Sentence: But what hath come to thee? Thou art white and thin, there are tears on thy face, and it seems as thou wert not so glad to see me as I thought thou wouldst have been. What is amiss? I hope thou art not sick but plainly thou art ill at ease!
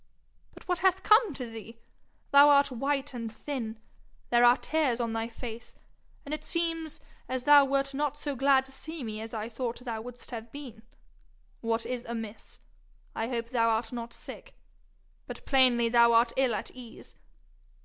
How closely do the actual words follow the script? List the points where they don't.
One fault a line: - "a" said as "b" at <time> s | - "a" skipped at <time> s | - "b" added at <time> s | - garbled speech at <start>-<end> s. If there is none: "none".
none